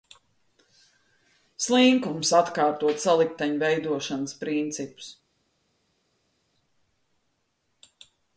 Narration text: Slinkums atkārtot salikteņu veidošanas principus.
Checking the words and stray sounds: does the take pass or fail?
pass